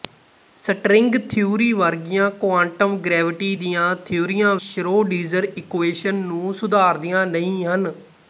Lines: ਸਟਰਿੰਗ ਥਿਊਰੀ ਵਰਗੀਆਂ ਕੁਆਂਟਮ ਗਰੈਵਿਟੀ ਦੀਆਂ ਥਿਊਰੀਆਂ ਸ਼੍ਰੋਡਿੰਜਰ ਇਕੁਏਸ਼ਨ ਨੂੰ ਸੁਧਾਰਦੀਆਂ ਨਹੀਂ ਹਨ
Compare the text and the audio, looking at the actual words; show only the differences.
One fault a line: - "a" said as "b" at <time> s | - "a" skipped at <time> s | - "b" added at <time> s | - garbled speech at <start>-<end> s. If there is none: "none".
none